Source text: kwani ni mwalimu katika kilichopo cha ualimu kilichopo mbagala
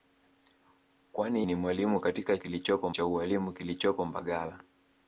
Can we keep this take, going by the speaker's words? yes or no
yes